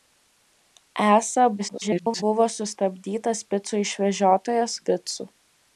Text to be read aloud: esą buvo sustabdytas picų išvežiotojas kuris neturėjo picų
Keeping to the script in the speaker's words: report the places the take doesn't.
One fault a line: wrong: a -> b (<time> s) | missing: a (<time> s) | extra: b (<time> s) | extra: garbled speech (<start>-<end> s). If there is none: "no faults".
extra: garbled speech (1.6-2.2 s)
missing: kuris neturėjo (4.8 s)